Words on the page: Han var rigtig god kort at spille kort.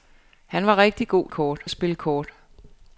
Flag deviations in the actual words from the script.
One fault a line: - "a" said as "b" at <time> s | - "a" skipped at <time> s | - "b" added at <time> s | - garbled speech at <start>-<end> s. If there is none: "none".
none